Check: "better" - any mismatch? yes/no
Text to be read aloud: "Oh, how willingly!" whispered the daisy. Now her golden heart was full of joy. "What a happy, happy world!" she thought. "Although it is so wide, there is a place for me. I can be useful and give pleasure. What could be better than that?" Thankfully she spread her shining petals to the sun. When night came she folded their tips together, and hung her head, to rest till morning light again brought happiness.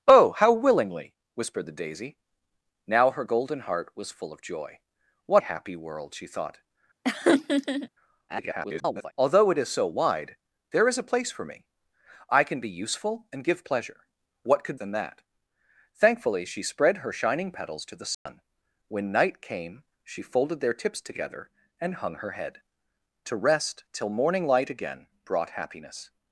yes